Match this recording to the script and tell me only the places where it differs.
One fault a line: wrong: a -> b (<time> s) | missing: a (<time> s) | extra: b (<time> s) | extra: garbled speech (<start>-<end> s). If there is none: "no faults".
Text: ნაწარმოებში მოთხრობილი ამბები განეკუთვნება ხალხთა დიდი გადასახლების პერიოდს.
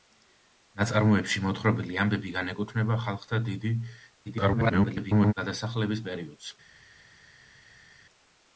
extra: garbled speech (4.3-5.3 s)